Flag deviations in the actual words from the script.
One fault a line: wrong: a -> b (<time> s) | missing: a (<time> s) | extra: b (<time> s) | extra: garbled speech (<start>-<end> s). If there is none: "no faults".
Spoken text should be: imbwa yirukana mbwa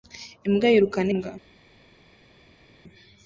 no faults